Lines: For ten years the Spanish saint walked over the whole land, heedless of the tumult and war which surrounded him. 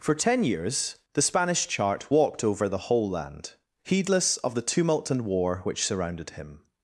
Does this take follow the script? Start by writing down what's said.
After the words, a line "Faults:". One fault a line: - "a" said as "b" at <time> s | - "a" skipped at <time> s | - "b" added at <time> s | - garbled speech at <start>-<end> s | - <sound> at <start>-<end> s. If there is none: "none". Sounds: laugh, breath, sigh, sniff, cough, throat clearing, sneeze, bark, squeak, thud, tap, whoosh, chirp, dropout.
For ten years the Spanish chart walked over the whole land, heedless of the tumult and war which surrounded him.
Faults:
- "saint" said as "chart" at 1.7 s